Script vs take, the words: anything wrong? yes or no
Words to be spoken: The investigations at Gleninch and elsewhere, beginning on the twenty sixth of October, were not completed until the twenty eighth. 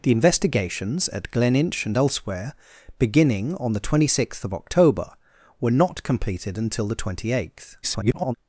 yes